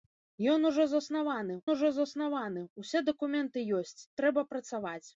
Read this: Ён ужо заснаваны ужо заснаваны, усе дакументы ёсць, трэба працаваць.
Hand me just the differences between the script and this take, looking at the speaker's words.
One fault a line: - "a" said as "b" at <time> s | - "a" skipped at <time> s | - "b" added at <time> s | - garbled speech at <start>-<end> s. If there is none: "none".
none